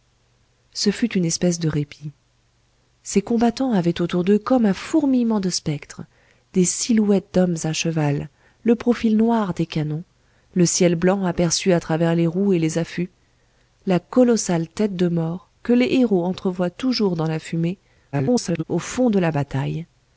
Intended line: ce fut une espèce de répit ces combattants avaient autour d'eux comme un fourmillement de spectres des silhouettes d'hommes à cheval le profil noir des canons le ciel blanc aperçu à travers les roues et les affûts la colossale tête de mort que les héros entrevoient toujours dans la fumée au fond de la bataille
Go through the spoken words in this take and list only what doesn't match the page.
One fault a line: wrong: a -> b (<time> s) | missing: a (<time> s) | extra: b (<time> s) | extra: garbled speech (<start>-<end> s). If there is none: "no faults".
extra: garbled speech (18.1-18.6 s)